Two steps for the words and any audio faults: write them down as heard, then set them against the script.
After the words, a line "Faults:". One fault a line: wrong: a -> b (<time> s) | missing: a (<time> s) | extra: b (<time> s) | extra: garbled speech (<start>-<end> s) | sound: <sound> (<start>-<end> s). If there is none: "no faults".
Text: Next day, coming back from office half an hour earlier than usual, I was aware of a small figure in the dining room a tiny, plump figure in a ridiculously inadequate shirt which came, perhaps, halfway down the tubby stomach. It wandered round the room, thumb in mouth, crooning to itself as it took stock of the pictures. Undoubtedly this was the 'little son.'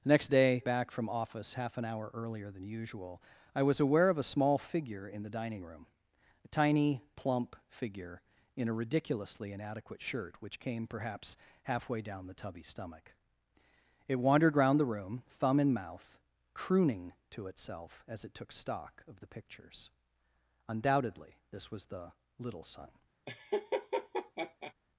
Next day, back from office half an hour earlier than usual, I was aware of a small figure in the dining room a tiny, plump figure in a ridiculously inadequate shirt which came, perhaps, halfway down the tubby stomach. It wandered round the room, thumb in mouth, crooning to itself as it took stock of the pictures. Undoubtedly this was the 'little son.'
Faults:
missing: coming (0.6 s)
sound: laugh (23.3-24.7 s)